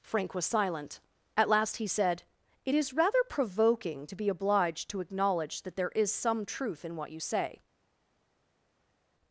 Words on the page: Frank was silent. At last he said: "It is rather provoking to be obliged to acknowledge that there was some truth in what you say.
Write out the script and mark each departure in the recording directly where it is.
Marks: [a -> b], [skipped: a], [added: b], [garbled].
Frank was silent. At last he said: "It is rather provoking to be obliged to acknowledge that there [was -> is] some truth in what you say.